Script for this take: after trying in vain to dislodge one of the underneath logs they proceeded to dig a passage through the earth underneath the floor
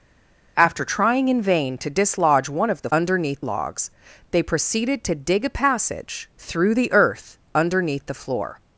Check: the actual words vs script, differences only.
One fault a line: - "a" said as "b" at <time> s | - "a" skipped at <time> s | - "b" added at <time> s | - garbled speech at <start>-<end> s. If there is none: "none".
none